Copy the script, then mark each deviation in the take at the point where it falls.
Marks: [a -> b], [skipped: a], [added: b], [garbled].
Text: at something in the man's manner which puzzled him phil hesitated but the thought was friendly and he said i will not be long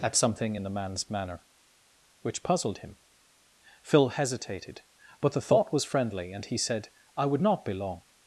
at something in the man's manner which puzzled him phil hesitated but the thought was friendly and he said i [will -> would] not be long